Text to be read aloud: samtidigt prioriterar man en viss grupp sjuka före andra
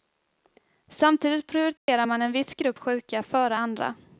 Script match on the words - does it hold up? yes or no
yes